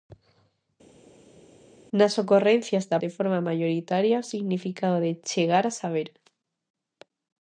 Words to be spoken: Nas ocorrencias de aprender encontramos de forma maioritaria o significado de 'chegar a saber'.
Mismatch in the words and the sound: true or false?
true